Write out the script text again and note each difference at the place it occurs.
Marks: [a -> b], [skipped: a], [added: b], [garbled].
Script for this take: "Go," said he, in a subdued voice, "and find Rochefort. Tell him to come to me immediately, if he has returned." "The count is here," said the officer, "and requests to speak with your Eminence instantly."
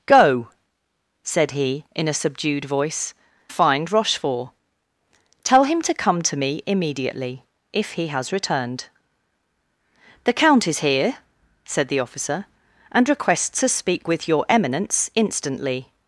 "Go," said he, in a subdued voice, [skipped: "and] find Rochefort. Tell him to come to me immediately, if he has returned." "The count is here," said the officer, "and requests to speak with your Eminence instantly."